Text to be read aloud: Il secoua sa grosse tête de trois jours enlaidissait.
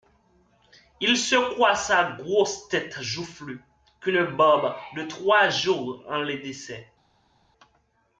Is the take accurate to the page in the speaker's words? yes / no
no